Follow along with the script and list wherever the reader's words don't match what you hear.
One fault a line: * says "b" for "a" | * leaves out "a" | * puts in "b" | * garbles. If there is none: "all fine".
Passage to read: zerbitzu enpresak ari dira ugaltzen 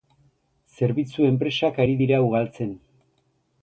all fine